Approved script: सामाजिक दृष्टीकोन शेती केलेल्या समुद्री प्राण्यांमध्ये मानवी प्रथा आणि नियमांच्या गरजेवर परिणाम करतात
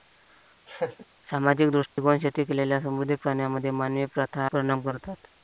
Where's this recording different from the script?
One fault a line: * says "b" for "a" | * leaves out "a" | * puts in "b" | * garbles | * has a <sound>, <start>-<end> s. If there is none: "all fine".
* has a laugh, 0.7-1.1 s
* has a dropout, 1.9-2.0 s
* leaves out "आणि नियमांच्या गरजेवर"